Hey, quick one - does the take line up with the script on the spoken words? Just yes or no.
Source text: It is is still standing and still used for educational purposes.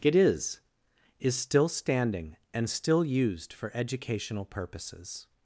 yes